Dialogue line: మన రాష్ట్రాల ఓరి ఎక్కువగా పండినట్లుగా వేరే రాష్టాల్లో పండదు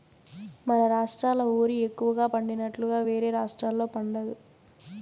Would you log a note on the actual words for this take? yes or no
no